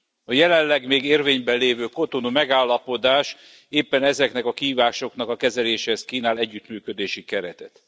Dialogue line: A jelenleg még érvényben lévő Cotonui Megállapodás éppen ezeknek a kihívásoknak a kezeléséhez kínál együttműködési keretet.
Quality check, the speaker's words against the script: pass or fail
pass